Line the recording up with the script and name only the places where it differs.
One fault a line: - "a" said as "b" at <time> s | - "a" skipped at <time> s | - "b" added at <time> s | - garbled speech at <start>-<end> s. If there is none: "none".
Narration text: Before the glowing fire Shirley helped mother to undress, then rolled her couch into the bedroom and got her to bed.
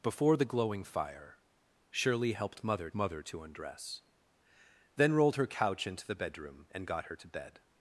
- "mother" added at 2.9 s